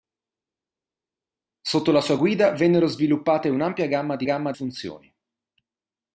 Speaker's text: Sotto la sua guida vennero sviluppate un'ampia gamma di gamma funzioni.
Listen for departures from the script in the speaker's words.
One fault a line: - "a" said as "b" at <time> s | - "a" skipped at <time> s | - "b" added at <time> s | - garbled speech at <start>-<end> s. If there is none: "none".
none